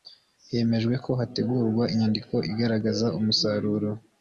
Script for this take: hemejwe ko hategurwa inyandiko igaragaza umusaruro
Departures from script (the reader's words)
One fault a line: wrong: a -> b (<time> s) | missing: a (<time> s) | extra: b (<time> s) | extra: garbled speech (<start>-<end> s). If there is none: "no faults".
no faults